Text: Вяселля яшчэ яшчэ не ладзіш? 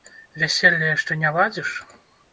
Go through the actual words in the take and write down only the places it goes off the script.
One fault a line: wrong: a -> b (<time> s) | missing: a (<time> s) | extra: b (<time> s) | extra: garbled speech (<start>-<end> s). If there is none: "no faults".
missing: яшчэ (1.2 s)